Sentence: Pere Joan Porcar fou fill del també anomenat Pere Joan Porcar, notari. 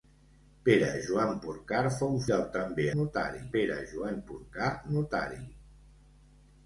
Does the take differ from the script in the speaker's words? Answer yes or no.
yes